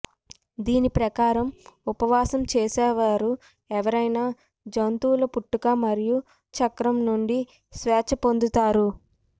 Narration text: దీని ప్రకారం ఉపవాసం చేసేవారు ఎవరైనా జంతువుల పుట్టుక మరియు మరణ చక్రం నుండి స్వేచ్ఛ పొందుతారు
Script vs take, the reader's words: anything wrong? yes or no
yes